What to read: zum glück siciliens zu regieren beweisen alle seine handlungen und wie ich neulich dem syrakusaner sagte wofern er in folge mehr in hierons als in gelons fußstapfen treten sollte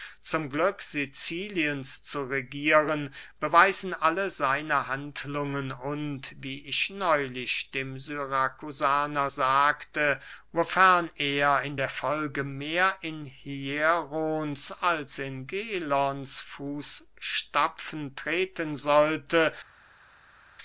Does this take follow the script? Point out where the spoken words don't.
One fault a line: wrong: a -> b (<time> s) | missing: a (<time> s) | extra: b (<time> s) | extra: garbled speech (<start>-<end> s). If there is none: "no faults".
extra: der (11.8 s)